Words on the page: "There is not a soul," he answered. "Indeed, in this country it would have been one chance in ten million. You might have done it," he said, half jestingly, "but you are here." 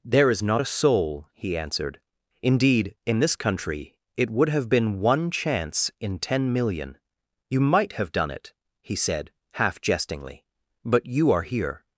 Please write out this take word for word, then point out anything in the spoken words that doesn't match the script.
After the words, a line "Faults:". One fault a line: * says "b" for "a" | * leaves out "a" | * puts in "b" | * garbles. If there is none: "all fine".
"There is not a soul," he answered. "Indeed, in this country it would have been one chance in ten million. You might have done it," he said, half jestingly, "but you are here."
Faults:
all fine